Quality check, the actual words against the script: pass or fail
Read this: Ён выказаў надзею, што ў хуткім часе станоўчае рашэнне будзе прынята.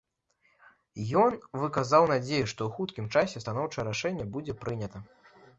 pass